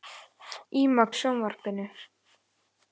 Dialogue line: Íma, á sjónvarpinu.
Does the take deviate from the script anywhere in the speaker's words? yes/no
no